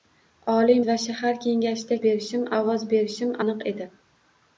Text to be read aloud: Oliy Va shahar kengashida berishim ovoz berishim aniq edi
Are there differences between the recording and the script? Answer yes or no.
no